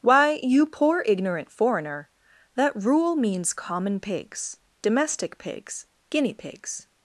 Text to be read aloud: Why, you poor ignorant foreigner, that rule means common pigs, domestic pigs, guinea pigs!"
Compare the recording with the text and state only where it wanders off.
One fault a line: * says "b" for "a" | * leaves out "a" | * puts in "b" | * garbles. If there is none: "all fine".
all fine